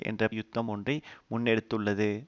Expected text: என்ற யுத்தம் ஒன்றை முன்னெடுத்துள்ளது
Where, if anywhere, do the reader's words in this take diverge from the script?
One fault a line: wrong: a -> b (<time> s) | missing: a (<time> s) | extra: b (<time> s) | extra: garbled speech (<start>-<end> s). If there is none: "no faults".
no faults